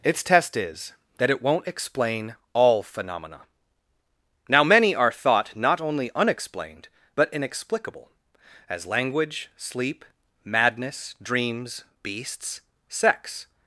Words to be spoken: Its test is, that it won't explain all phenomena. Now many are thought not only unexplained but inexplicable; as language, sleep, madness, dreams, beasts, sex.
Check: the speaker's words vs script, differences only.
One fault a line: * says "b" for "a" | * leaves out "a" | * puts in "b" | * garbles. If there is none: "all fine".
all fine